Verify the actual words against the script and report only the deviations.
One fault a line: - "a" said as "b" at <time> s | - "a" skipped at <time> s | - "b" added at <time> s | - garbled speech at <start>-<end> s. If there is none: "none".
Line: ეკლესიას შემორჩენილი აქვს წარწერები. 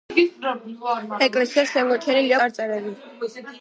- "აქვს" skipped at 2.3 s